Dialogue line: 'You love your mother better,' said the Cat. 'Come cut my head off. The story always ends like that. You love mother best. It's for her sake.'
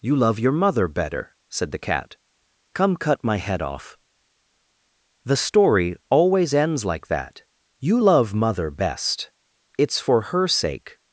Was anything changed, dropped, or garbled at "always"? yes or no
no